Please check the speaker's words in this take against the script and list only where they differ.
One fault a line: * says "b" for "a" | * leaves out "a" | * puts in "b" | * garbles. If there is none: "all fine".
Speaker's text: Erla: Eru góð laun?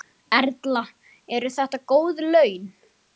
* puts in "þetta"